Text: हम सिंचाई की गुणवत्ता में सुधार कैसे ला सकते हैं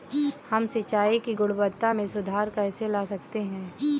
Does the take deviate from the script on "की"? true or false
false